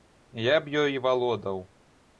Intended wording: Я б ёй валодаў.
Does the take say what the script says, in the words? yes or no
yes